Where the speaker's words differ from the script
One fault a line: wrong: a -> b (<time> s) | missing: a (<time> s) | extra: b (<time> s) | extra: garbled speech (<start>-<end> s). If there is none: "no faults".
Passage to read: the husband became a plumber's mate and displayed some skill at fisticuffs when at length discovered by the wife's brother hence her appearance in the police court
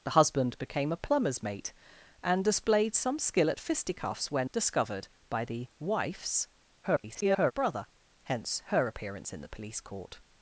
missing: at length (4.5 s)
extra: garbled speech (6.8-7.5 s)